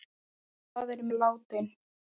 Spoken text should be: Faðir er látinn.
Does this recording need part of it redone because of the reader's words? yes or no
no